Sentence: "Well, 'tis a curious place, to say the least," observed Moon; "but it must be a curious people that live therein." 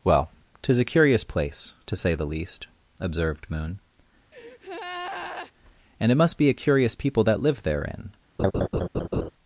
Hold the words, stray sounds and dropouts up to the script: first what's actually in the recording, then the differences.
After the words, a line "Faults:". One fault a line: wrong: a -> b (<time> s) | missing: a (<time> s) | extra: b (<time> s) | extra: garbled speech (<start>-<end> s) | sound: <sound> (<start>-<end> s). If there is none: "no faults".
"Well, 'tis a curious place, to say the least," observed Moon; "and it must be a curious people that live therein."
Faults:
sound: breath (4.3-5.5 s)
wrong: but -> and (6.0 s)
sound: laugh (8.4-9.3 s)